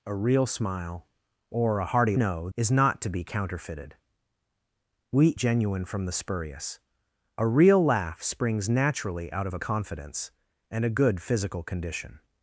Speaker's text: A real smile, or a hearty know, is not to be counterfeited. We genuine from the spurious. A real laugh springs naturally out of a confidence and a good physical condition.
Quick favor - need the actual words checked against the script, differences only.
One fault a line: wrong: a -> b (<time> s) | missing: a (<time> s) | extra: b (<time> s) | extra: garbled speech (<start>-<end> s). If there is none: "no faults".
no faults